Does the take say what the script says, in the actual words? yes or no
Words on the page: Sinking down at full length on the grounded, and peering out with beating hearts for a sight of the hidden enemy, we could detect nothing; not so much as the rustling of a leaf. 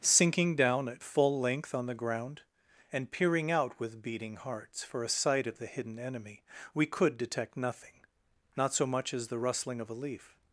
no